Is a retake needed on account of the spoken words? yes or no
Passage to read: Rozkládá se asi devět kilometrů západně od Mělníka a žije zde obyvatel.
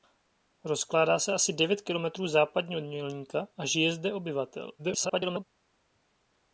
yes